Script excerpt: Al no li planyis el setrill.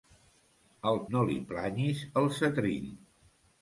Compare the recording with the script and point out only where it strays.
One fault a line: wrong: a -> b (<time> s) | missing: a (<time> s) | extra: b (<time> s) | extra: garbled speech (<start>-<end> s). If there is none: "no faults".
no faults